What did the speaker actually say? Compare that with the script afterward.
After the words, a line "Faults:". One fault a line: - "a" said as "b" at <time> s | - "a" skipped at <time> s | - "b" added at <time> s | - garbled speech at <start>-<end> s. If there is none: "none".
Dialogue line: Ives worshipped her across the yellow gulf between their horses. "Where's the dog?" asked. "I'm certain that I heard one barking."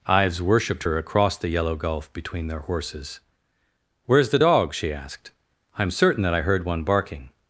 Ives worshipped her across the yellow gulf between their horses. "Where's the dog?" she asked. "I'm certain that I heard one barking."
Faults:
- "she" added at 4.7 s